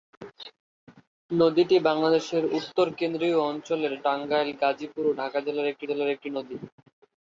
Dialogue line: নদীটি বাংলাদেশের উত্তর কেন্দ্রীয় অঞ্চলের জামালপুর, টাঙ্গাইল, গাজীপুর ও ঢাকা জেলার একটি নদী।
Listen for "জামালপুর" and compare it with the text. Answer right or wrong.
wrong